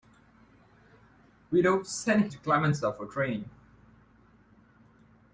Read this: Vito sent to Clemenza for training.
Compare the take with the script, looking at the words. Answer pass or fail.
pass